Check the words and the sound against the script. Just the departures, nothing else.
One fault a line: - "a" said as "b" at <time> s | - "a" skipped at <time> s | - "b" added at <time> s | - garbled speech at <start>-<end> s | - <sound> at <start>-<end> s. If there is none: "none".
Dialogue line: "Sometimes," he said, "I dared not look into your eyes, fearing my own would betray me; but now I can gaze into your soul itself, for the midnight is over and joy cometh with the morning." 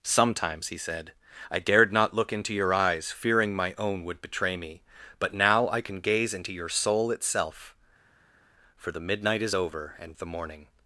- "joy cometh with" skipped at 10.1 s